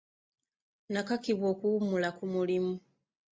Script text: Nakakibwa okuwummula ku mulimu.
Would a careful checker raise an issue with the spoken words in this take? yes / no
no